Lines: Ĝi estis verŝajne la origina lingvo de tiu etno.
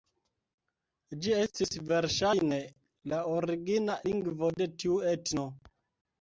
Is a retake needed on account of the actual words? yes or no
no